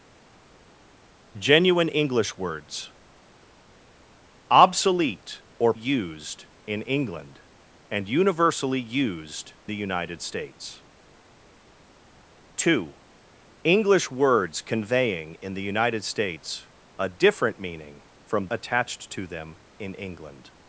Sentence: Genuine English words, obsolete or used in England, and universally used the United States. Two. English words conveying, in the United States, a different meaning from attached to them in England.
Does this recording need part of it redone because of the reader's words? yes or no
no